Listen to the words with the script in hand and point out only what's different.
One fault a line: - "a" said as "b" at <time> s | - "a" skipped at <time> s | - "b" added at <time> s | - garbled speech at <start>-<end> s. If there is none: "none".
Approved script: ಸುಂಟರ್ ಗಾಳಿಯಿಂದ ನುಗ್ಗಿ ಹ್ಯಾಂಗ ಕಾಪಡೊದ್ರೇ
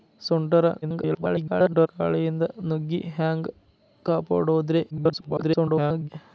- garbled speech at 0.8-1.9 s
- garbled speech at 4.9-6.1 s